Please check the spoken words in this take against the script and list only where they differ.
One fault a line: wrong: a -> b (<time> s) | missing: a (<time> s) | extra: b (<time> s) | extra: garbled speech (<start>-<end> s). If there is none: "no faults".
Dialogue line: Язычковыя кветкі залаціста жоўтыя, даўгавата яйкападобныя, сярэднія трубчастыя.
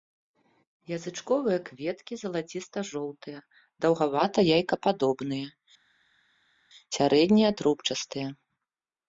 no faults